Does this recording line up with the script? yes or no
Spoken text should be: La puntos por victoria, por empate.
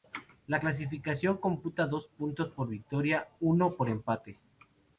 no